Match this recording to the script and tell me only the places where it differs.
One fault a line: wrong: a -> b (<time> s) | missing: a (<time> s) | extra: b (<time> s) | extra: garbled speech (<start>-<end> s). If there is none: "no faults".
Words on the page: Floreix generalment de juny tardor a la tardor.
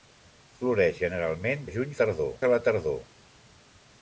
no faults